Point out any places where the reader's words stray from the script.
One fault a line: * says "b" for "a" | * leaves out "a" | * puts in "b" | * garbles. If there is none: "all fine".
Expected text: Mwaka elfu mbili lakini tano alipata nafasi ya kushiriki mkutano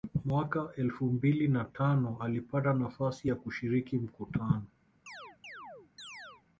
* says "na" for "lakini"